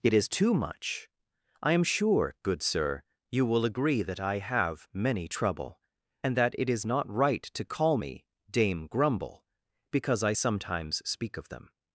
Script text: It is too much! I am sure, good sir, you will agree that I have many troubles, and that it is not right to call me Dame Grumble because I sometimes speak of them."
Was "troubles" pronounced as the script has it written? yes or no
no